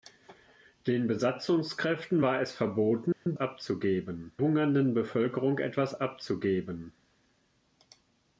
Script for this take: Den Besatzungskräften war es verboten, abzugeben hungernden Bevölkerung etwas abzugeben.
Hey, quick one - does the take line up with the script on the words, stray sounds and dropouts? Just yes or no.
no